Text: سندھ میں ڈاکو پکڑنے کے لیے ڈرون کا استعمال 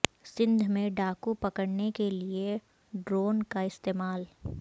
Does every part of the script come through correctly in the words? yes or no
yes